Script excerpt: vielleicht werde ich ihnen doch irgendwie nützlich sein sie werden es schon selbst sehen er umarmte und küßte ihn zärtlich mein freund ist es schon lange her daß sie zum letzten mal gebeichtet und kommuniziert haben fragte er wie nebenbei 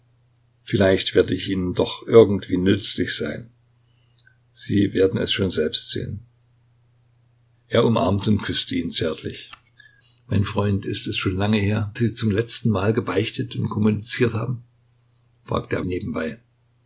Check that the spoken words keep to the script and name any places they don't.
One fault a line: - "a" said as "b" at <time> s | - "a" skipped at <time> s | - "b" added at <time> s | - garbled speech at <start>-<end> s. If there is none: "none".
- "daß" skipped at 11.9 s
- "wie" skipped at 15.9 s